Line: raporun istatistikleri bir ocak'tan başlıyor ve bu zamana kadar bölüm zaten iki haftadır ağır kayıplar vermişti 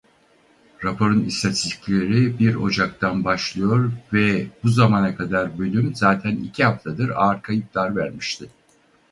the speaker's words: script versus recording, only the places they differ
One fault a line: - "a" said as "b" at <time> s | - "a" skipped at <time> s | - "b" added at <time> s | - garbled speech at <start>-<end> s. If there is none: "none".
none